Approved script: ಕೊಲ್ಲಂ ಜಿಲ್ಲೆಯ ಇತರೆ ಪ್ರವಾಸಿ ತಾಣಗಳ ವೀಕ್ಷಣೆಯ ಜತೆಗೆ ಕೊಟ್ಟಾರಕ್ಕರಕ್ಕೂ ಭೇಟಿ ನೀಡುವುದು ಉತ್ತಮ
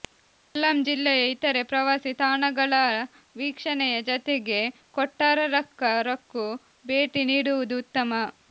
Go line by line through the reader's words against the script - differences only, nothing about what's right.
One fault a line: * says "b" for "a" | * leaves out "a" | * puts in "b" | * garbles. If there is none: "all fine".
all fine